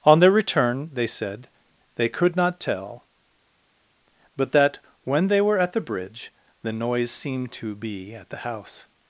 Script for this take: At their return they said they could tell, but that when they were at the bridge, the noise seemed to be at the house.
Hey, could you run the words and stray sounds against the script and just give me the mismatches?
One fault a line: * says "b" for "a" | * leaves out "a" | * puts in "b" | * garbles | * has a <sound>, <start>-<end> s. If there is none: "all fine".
* says "On" for "At"
* puts in "not"